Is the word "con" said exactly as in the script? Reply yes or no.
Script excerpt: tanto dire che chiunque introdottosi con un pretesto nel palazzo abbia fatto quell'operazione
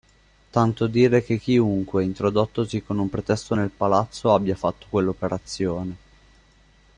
yes